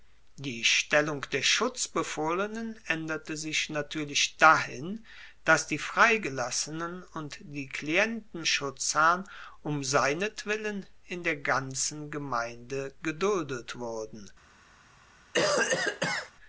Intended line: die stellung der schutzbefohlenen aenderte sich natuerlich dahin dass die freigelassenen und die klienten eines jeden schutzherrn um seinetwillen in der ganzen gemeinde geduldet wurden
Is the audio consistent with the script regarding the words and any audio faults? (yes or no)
no